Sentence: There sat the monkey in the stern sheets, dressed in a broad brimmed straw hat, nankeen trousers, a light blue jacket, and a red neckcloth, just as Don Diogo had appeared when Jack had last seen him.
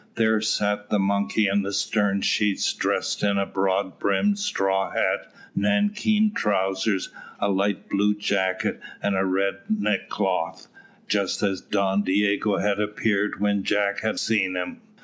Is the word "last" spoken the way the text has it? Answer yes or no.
no